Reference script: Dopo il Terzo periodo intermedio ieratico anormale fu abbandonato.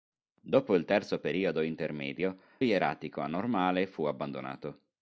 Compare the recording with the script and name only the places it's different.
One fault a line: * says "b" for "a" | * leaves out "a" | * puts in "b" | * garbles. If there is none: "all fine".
all fine